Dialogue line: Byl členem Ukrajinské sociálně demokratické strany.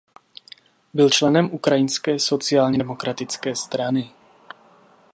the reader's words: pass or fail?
pass